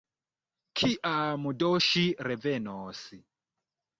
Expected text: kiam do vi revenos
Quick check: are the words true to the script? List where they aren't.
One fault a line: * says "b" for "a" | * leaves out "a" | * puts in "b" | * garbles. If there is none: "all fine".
* says "ŝi" for "vi"